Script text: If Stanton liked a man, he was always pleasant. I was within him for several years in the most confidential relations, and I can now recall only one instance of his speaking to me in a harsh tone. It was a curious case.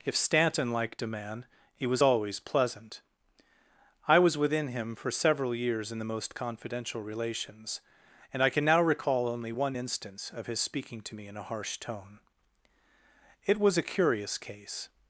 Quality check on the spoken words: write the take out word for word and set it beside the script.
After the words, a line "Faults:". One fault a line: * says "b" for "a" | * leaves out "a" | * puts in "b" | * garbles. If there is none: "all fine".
If Stanton liked a man, he was always pleasant. I was within him for several years in the most confidential relations, and I can now recall only one instance of his speaking to me in a harsh tone. It was a curious case.
Faults:
all fine